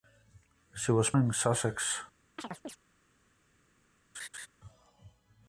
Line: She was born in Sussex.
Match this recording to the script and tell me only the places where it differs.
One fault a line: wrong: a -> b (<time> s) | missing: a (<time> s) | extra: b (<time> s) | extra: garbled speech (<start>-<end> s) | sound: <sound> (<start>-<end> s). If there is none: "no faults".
missing: born (1.1 s)
sound: chirp (2.4-2.8 s)
sound: laugh (4.1-4.5 s)